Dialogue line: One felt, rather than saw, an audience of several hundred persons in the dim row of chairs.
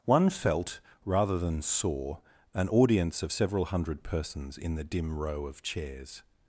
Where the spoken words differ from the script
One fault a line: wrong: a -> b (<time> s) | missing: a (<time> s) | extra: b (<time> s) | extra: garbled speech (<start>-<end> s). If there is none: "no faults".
no faults